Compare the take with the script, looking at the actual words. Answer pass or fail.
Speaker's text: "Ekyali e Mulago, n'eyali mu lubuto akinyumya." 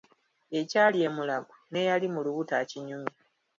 pass